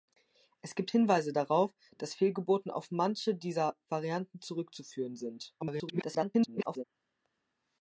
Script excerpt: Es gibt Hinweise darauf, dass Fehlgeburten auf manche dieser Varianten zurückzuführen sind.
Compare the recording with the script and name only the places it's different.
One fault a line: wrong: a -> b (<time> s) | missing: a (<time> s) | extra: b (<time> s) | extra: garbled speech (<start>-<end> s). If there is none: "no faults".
extra: garbled speech (5.6-6.8 s)